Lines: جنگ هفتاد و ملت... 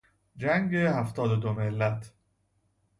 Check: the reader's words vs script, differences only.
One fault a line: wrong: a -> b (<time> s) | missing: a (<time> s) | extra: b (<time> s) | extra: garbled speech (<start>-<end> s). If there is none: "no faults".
extra: دو (1.4 s)